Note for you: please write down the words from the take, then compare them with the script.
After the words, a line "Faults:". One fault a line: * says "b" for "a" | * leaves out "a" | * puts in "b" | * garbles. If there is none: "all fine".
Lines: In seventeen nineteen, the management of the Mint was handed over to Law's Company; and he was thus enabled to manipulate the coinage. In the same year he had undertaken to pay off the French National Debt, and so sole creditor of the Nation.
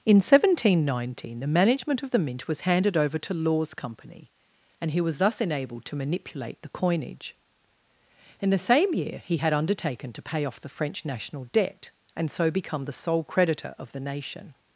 In seventeen nineteen, the management of the Mint was handed over to Law's Company; and he was thus enabled to manipulate the coinage. In the same year he had undertaken to pay off the French National Debt, and so become the sole creditor of the Nation.
Faults:
* puts in "become the"